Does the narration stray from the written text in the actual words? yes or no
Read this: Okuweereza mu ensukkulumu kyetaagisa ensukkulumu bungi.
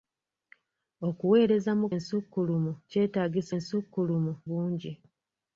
no